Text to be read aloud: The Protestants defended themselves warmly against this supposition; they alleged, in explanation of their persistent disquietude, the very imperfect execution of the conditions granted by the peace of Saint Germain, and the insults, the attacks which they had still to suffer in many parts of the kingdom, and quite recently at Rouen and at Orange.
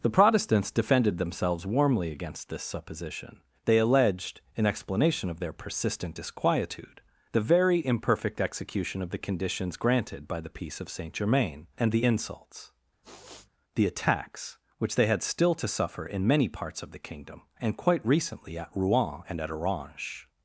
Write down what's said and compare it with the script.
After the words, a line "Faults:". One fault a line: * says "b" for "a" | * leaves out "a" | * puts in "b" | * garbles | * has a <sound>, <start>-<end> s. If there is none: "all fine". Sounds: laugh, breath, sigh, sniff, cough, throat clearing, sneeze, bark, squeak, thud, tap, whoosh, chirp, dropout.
The Protestants defended themselves warmly against this supposition; they alleged, in explanation of their persistent disquietude, the very imperfect execution of the conditions granted by the peace of Saint Germain, and the insults, the attacks which they had still to suffer in many parts of the kingdom, and quite recently at Rouen and at Orange.
Faults:
* has a sniff, 13.0-13.5 s